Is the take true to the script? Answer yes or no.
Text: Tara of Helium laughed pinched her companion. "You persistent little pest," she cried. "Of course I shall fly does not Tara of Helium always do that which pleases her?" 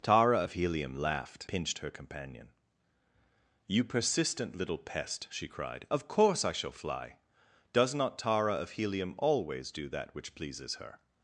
yes